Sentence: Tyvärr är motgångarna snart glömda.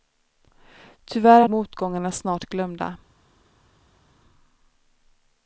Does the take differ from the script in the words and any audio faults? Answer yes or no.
no